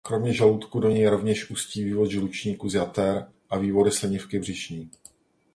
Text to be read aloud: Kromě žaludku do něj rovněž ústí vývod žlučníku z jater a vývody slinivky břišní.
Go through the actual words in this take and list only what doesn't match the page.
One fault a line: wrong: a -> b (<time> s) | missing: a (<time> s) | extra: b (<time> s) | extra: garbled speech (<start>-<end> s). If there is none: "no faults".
no faults